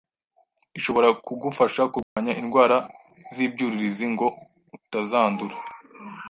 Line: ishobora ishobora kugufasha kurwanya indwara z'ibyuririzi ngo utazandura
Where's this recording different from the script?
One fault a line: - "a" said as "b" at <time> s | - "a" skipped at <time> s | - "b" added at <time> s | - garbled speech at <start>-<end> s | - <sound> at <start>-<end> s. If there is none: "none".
- "ishobora" skipped at 1.1 s
- dropout at 2.0-2.2 s